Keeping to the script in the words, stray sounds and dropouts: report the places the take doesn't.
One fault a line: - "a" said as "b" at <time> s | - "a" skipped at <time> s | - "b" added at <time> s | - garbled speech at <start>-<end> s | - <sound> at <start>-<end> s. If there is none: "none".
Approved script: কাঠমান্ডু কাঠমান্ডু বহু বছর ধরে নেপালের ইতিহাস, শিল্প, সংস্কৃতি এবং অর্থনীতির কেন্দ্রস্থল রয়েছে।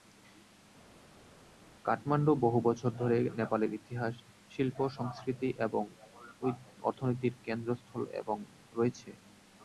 - "কাঠমান্ডু" skipped at 2.3 s
- "এবং" added at 8.2 s